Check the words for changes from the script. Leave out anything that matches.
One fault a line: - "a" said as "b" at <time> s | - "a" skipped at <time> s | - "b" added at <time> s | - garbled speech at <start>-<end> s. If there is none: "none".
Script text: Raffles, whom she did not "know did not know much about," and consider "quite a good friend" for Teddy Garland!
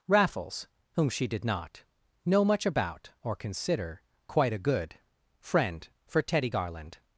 - "did not know" skipped at 2.4 s
- "and" said as "or" at 3.2 s